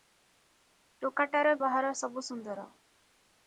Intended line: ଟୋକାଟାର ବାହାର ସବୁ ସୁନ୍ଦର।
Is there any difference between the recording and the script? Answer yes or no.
no